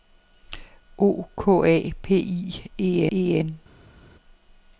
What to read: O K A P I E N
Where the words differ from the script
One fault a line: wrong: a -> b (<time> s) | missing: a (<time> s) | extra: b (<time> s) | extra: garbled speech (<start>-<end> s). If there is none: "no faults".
extra: E (3.1 s)